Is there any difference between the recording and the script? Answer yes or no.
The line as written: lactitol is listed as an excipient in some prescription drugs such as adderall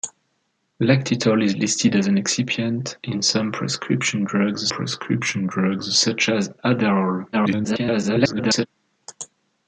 yes